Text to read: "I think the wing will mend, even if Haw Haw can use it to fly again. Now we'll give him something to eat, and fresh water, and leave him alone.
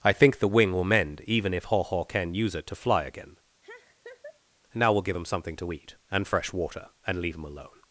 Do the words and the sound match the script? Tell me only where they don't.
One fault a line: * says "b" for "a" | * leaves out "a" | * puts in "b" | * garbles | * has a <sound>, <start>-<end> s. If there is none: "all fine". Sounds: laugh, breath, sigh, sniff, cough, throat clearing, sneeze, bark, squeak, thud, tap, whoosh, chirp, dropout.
* has a laugh, 3.6-4.4 s